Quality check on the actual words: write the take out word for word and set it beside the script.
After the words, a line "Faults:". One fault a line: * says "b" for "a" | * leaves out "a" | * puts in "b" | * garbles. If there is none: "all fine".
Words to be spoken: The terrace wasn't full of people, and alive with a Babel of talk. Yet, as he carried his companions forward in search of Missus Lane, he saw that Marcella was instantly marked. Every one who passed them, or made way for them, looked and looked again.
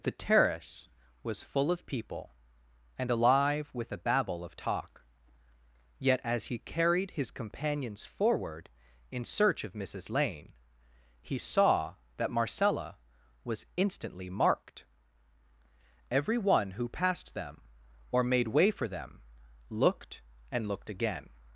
The terrace was full of people, and alive with a Babel of talk. Yet, as he carried his companions forward in search of Missus Lane, he saw that Marcella was instantly marked. Every one who passed them, or made way for them, looked and looked again.
Faults:
* says "was" for "wasn't"